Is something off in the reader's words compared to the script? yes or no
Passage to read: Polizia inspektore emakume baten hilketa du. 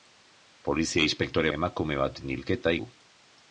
no